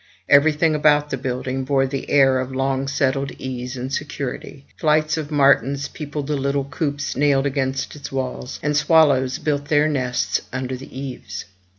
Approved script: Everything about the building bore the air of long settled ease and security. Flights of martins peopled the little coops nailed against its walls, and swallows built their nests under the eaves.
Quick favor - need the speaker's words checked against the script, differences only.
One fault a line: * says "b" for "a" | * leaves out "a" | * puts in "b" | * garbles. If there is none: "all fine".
all fine